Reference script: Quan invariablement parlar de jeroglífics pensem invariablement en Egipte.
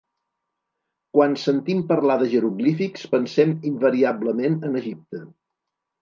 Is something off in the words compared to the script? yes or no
yes